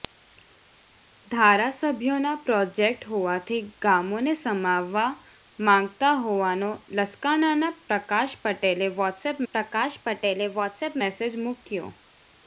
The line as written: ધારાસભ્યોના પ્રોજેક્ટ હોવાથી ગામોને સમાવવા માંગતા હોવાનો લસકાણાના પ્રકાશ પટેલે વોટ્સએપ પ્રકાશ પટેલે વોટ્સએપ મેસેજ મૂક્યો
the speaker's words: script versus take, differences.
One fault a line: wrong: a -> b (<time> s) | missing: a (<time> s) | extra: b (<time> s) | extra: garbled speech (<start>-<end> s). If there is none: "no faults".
no faults